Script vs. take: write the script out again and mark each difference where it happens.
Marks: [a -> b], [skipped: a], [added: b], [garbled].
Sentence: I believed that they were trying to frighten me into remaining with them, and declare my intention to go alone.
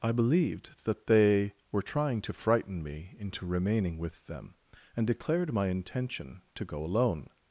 I believed that they were trying to frighten me into remaining with them, and [declare -> declared] my intention to go alone.